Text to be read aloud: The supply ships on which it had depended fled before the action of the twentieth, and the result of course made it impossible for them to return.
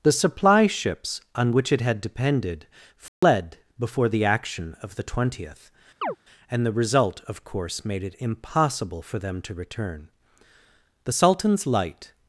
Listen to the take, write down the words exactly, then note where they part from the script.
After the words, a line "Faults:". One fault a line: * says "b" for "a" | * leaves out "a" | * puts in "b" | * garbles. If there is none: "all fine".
The supply ships on which it had depended fled before the action of the twentieth, and the result of course made it impossible for them to return. The sultan's light
Faults:
* puts in "The sultan's light"